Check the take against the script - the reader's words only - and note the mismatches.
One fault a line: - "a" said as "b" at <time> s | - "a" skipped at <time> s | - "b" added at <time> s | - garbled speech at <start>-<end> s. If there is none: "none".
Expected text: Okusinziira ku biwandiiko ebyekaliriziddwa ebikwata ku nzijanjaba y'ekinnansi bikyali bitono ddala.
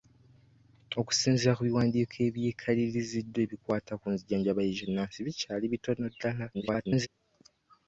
- garbled speech at 6.5-7.1 s